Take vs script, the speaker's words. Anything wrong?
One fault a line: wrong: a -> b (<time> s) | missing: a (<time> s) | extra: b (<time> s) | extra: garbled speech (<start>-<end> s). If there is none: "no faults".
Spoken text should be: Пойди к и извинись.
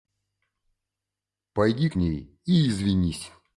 extra: ней (1.9 s)